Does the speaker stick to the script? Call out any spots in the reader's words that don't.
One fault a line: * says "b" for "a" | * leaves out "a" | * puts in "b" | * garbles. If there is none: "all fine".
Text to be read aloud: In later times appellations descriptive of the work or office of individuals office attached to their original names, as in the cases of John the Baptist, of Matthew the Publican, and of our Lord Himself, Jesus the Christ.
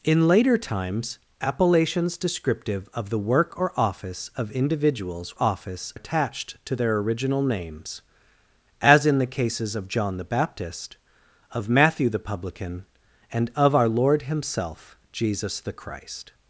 all fine